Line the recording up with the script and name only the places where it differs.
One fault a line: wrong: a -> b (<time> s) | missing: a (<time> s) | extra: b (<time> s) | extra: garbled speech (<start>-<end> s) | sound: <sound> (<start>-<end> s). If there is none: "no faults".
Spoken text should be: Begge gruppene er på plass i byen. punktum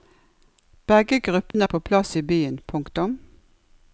sound: dropout (1.5-1.5 s)